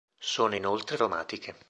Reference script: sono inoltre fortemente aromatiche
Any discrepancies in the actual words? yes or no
yes